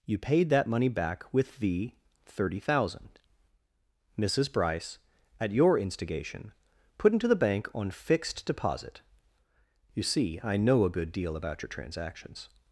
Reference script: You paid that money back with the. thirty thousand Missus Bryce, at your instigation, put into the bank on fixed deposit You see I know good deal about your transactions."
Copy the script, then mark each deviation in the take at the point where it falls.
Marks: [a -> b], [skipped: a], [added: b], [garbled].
You paid that money back with the. thirty thousand Missus Bryce, at your instigation, put into the bank on fixed deposit You see I know [added: a] good deal about your transactions."